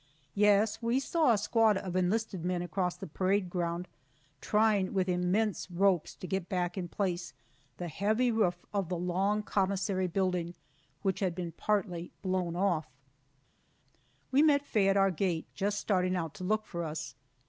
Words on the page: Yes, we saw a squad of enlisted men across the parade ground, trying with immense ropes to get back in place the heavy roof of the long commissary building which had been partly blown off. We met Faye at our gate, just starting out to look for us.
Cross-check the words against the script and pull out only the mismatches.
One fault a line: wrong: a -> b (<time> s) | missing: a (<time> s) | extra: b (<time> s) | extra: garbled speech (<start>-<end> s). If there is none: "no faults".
no faults